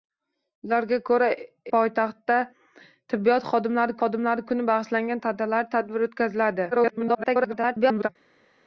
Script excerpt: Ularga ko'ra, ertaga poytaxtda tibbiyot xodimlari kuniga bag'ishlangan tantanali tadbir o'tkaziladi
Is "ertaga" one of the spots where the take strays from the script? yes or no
yes